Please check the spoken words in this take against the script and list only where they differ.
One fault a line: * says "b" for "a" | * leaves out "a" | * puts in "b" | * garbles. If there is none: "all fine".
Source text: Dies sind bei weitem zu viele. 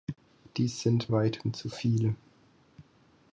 * leaves out "bei"